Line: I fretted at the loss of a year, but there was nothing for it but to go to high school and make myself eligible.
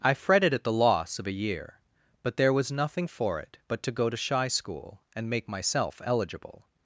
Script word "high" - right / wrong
wrong